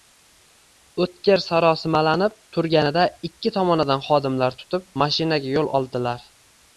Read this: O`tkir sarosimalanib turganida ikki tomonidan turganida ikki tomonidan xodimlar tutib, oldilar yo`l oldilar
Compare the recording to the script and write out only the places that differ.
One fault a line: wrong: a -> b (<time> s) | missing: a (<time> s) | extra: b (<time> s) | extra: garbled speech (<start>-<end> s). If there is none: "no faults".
missing: turganida ikki tomonidan (4.0 s)
wrong: oldilar -> mashinaga (5.0 s)